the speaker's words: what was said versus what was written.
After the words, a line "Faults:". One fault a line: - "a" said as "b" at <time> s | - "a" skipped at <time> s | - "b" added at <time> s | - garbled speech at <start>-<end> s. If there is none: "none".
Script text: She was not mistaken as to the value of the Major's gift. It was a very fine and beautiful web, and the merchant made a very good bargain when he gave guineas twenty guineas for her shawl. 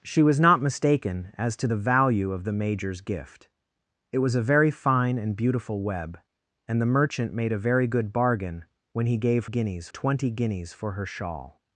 She was not mistaken as to the value of the Major's gift. It was a very fine and beautiful web, and the merchant made a very good bargain when he gave guineas twenty guineas for her shawl.
Faults:
none